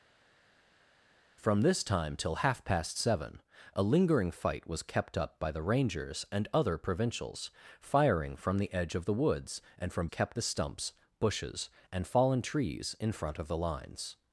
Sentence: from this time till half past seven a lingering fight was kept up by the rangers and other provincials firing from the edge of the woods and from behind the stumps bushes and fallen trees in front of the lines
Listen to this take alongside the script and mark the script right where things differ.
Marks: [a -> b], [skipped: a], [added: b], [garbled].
from this time till half past seven a lingering fight was kept up by the rangers and other provincials firing from the edge of the woods and from [behind -> kept] the stumps bushes and fallen trees in front of the lines